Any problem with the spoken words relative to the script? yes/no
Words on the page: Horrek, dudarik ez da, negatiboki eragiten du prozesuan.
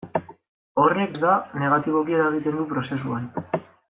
yes